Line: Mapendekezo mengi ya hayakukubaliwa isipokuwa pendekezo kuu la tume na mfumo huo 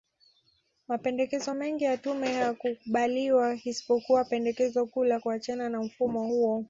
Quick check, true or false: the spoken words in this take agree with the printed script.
false